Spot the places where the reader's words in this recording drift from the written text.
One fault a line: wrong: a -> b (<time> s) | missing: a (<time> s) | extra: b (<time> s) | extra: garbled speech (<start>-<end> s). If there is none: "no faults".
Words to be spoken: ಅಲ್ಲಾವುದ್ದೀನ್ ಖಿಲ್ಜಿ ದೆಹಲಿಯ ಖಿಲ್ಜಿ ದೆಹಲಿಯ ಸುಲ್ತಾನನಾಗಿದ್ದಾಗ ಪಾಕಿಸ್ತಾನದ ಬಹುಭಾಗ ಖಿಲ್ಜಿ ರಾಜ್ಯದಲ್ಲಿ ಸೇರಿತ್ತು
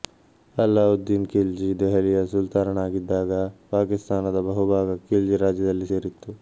missing: ಖಿಲ್ಜಿ ದೆಹಲಿಯ (2.2 s)